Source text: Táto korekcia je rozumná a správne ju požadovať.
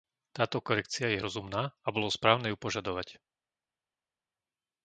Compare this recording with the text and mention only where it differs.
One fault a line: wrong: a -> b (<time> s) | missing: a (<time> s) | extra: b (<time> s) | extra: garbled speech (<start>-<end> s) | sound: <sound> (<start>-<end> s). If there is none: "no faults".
extra: bolo (1.9 s)